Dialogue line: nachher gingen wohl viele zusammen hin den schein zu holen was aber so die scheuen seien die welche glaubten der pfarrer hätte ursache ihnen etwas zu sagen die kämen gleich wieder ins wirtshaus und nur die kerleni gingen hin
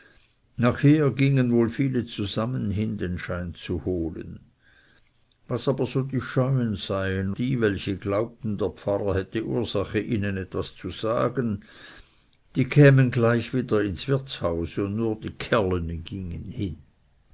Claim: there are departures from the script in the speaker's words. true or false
false